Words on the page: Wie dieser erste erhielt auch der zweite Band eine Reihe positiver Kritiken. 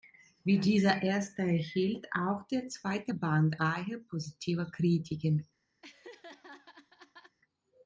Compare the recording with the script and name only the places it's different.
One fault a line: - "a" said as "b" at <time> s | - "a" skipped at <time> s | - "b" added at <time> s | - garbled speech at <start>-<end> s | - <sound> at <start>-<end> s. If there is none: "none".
- "eine" skipped at 3.6 s
- laugh at 5.8-7.4 s